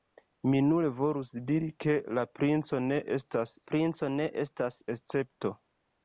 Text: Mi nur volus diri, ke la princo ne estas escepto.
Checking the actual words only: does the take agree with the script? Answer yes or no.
no